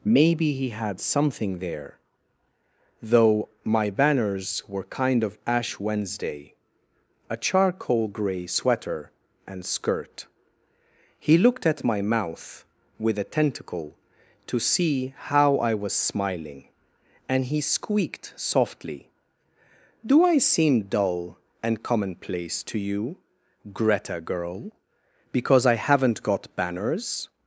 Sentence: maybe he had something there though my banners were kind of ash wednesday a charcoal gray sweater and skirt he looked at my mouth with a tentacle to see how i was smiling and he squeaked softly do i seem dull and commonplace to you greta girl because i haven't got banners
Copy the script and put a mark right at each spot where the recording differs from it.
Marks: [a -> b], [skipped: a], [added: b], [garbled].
maybe he had something there though my banners were kind of ash wednesday a charcoal gray sweater and skirt he looked at my mouth with a tentacle to see how i was smiling and he squeaked softly do i seem dull and commonplace to you greta girl because i haven't got banners